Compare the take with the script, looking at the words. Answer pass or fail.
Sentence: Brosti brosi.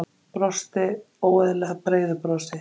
fail